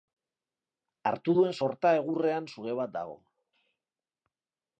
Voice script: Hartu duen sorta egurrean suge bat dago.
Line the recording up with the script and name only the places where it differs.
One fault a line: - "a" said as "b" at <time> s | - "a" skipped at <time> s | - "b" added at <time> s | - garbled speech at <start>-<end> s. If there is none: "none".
none